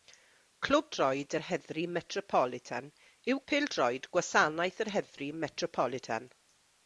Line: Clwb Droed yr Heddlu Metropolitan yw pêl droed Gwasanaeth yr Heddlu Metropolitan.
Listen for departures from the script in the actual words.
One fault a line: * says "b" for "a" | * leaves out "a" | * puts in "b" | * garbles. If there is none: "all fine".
all fine